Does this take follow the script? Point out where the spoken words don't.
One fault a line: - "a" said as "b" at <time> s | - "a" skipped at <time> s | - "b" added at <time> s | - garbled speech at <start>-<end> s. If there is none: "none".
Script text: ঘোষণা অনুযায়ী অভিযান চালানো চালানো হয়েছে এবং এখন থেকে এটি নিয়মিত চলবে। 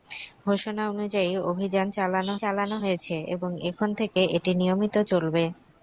none